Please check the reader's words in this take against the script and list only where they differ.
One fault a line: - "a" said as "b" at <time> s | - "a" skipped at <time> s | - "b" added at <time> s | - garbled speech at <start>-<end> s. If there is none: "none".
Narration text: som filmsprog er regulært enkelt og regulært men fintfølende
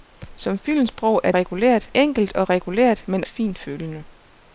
none